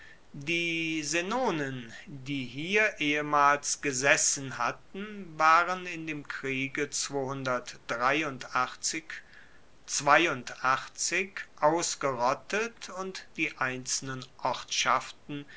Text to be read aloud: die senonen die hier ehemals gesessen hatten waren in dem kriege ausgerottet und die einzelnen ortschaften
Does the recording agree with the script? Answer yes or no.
yes